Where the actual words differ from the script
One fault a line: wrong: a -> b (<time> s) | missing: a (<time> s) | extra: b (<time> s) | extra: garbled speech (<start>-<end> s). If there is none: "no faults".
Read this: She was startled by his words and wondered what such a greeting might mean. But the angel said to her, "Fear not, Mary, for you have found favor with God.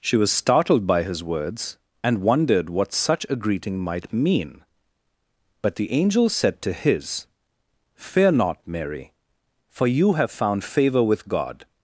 wrong: her -> his (6.7 s)